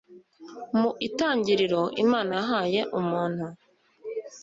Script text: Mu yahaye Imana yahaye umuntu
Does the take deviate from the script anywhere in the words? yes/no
yes